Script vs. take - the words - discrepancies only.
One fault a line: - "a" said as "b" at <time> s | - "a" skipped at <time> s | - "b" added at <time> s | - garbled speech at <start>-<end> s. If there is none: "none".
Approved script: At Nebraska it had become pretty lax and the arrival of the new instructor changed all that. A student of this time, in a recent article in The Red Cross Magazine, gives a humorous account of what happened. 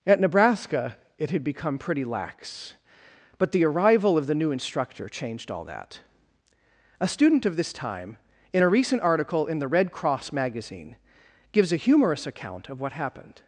- "and" said as "but" at 3.4 s